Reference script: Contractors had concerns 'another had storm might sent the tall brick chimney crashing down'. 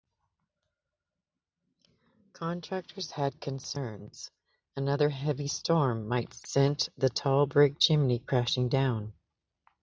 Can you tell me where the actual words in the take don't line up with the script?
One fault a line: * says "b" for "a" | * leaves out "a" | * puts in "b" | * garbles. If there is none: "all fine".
* says "heavy" for "had"